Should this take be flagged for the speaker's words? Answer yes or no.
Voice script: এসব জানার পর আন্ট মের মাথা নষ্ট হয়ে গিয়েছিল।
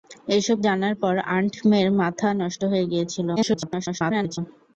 yes